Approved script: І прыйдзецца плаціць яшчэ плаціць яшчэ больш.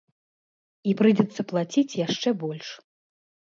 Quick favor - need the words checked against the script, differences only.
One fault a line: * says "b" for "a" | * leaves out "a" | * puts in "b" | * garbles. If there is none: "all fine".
* leaves out "плаціць яшчэ"